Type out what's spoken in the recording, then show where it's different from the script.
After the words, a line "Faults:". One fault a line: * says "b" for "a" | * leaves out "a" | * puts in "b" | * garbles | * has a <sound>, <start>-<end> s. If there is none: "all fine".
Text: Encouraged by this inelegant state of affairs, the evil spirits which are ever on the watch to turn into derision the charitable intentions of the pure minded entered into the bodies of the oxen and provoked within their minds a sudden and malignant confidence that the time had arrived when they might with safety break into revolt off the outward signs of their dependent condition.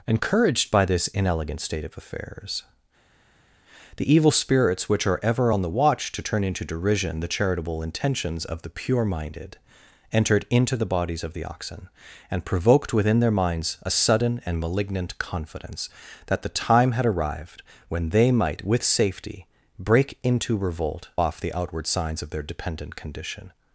Encouraged by this inelegant state of affairs, the evil spirits which are ever on the watch to turn into derision the charitable intentions of the pure minded entered into the bodies of the oxen and provoked within their minds a sudden and malignant confidence that the time had arrived when they might with safety break into revolt off the outward signs of their dependent condition.
Faults:
all fine